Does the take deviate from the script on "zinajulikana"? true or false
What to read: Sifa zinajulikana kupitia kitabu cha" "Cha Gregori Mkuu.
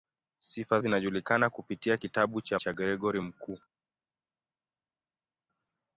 false